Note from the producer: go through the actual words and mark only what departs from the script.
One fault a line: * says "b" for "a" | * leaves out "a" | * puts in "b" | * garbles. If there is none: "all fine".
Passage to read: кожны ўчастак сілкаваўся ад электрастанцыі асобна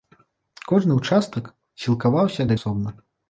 * leaves out "электрастанцыі"